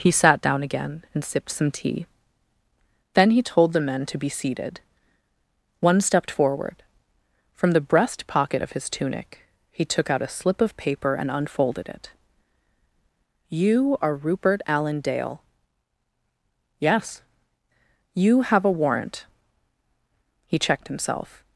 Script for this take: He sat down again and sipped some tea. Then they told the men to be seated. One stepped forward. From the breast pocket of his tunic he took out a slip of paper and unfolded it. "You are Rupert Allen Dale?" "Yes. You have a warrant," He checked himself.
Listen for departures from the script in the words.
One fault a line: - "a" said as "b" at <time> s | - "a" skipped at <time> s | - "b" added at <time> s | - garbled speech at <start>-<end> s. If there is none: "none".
- "they" said as "he" at 3.3 s